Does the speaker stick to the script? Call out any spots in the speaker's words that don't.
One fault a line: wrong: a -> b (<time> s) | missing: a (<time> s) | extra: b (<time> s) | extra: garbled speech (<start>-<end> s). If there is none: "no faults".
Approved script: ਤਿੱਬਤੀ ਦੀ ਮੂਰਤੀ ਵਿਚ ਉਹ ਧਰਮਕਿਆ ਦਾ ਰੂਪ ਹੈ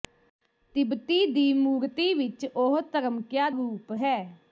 missing: ਦਾ (3.5 s)